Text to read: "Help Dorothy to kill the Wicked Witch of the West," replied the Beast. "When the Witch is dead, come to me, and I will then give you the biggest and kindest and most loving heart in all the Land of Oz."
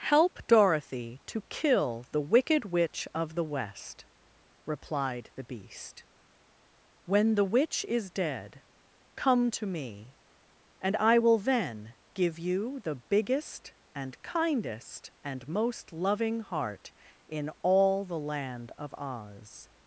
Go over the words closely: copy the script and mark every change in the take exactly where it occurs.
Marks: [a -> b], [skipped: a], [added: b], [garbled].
"Help Dorothy to kill the Wicked Witch of the West," replied the Beast. "When the Witch is dead, come to me, and I will then give you the biggest and kindest and most loving heart in all the Land of Oz."